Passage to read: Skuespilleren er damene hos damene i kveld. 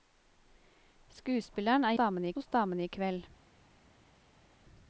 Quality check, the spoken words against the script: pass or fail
pass